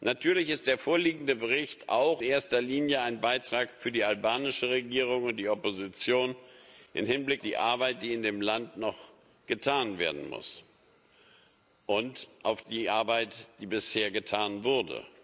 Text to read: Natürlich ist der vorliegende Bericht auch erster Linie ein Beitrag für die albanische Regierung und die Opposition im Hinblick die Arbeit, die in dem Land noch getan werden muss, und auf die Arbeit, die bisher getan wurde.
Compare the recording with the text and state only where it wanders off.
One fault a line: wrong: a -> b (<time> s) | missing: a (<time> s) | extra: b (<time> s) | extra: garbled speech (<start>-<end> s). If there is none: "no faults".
no faults